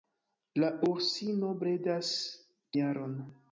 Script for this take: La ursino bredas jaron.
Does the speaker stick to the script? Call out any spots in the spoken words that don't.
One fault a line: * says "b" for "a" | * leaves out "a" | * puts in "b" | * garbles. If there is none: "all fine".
all fine